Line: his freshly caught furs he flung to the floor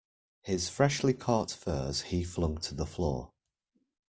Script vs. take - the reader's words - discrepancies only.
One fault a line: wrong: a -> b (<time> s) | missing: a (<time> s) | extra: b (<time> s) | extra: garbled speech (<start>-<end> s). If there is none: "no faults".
no faults